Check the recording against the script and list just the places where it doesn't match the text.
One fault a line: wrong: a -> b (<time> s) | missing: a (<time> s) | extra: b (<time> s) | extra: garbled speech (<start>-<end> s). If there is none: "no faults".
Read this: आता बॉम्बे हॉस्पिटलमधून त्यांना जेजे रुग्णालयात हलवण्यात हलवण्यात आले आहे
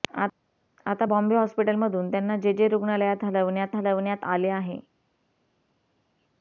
no faults